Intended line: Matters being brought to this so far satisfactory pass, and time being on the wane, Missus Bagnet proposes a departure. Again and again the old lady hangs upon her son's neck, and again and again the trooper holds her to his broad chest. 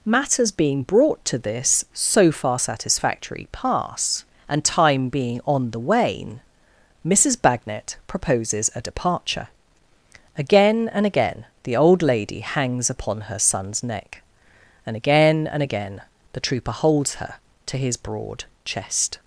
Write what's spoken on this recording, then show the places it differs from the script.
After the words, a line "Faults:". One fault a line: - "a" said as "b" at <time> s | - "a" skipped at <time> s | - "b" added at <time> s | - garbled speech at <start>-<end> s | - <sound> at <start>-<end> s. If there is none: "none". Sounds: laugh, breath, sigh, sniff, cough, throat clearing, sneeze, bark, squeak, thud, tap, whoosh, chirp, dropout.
Matters being brought to this so far satisfactory pass, and time being on the wane, Missus Bagnet proposes a departure. Again and again the old lady hangs upon her son's neck, and again and again the trooper holds her to his broad chest.
Faults:
none